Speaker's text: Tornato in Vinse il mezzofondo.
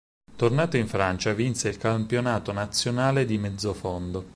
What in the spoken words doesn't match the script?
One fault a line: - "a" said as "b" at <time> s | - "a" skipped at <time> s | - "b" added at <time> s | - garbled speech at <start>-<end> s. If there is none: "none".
- "Francia" added at 0.9 s
- "campionato nazionale di" added at 1.8 s